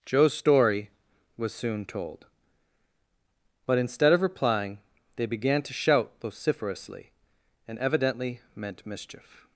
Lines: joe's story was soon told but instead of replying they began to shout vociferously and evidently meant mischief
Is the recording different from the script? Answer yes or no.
no